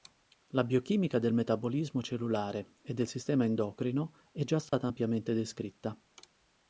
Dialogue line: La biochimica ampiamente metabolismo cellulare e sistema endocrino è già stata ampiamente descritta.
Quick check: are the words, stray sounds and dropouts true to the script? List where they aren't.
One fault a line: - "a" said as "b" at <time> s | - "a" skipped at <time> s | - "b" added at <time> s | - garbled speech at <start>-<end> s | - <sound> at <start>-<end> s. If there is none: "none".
- "ampiamente" said as "del" at 1.2 s
- "del" added at 3.0 s
- dropout at 4.7-4.7 s